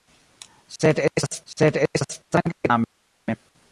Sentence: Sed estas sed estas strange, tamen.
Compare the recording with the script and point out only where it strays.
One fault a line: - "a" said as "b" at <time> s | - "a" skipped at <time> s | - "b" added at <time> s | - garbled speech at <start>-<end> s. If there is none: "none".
none